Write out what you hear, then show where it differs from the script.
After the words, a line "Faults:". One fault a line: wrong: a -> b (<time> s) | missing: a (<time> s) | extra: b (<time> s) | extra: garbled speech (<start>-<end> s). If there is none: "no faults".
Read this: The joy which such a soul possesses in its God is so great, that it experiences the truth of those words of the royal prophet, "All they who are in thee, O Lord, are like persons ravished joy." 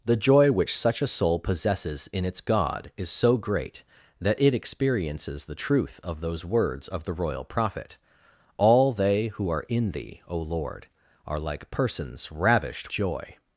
The joy which such a soul possesses in its God is so great, that it experiences the truth of those words of the royal prophet, "All they who are in thee, O Lord, are like persons ravished joy."
Faults:
no faults